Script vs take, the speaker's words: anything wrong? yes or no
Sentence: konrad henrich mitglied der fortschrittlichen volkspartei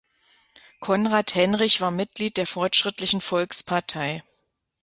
yes